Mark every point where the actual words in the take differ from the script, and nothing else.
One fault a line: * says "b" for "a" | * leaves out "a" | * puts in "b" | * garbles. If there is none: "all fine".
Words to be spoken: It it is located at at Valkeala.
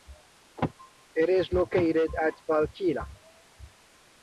* leaves out "it"
* leaves out "at"